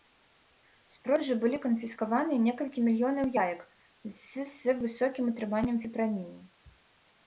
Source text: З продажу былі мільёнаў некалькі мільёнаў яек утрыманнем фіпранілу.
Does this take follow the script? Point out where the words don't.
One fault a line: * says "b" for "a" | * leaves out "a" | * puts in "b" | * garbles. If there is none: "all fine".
* says "канфіскаваныя" for "мільёнаў"
* puts in "з з высокім"